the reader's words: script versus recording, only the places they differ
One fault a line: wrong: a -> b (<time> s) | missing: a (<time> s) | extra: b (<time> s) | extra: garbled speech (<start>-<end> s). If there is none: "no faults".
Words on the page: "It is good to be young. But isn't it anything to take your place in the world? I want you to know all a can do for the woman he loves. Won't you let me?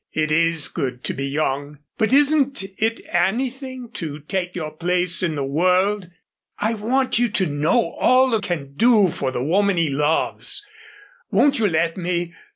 no faults